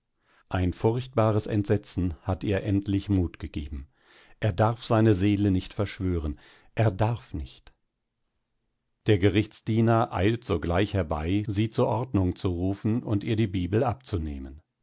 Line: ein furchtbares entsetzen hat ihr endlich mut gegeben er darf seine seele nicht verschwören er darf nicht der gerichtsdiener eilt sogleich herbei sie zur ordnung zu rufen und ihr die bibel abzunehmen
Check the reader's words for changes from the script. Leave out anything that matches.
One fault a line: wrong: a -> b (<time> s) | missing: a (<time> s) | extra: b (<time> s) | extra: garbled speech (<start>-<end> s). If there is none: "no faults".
no faults